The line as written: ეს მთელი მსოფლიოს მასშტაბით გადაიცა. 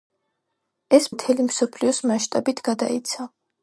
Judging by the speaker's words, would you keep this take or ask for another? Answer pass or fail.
pass